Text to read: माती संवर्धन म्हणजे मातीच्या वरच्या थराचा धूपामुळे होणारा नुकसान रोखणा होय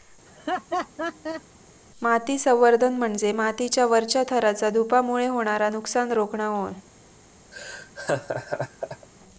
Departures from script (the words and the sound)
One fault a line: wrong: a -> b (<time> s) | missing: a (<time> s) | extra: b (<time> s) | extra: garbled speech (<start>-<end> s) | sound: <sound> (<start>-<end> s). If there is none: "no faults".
sound: laugh (0.3-1.4 s)
sound: laugh (7.5-9.1 s)